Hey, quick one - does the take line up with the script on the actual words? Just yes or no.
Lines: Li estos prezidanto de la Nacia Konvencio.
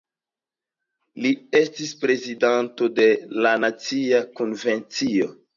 no